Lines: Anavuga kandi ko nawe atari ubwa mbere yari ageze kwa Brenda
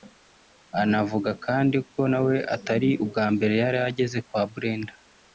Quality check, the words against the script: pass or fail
pass